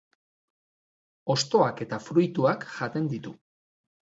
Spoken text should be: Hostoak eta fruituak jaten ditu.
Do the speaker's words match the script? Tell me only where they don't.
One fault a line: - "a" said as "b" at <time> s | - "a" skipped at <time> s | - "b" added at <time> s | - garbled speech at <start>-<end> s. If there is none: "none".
none